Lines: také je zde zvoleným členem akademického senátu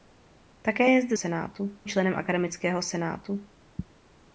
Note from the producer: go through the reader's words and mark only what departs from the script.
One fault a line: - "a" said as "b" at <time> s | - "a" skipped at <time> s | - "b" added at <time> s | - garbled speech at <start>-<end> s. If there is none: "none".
- "zvoleným" said as "senátu" at 1.1 s